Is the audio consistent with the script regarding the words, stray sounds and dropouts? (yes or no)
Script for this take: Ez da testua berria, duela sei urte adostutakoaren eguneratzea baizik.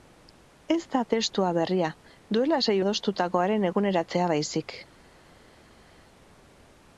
no